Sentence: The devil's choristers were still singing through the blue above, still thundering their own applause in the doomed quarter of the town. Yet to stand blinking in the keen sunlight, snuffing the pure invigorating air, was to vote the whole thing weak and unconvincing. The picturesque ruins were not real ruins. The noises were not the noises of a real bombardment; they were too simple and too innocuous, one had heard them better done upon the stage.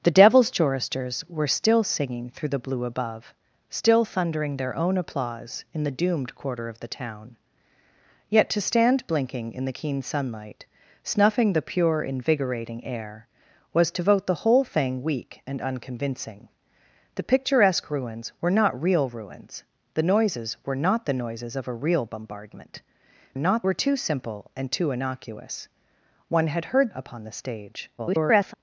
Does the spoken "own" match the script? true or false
true